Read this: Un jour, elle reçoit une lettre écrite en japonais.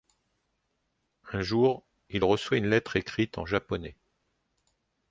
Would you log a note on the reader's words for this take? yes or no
yes